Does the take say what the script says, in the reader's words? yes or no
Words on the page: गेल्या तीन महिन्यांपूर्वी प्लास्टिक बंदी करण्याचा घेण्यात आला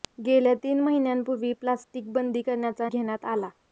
yes